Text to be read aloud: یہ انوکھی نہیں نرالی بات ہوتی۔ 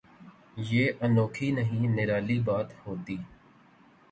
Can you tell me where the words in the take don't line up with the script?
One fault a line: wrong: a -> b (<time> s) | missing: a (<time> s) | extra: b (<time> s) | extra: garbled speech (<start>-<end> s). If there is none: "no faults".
no faults